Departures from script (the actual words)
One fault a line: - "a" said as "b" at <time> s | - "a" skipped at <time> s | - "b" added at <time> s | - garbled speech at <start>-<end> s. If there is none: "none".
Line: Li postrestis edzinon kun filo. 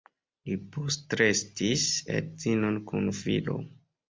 none